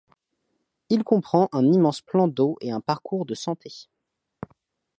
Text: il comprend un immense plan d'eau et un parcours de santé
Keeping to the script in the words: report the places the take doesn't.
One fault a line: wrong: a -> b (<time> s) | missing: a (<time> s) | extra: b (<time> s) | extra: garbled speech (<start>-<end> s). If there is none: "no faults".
no faults